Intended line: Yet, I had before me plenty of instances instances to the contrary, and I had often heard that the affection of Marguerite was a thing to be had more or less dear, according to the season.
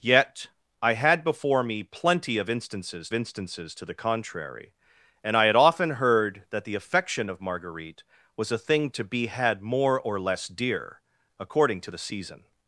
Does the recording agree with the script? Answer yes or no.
yes